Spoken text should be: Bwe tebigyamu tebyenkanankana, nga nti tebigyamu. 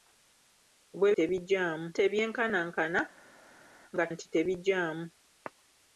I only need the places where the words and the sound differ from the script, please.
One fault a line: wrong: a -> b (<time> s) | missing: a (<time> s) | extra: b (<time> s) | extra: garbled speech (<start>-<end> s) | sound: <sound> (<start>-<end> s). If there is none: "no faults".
no faults